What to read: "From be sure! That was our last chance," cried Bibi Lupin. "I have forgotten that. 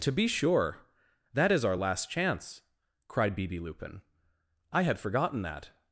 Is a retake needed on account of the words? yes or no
yes